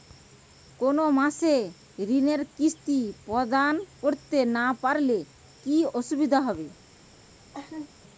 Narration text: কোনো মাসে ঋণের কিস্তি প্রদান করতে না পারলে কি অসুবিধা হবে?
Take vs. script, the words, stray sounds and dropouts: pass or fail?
fail